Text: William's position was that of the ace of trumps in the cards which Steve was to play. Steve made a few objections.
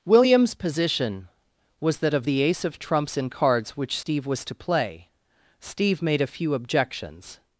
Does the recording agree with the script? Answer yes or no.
no